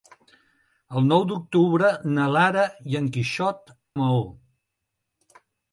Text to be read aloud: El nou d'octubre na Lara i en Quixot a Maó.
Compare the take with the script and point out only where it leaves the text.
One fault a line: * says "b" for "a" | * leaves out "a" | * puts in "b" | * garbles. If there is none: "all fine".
all fine